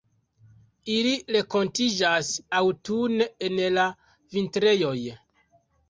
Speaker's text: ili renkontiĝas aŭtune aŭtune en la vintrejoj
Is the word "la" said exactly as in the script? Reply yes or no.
yes